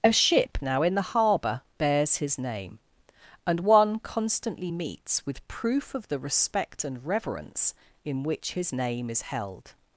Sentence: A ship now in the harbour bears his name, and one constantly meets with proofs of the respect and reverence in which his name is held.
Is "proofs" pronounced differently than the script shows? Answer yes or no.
yes